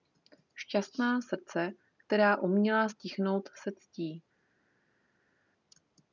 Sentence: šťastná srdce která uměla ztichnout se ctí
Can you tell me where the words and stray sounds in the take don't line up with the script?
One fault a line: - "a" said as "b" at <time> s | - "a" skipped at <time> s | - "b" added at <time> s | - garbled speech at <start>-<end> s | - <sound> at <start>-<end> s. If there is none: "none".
none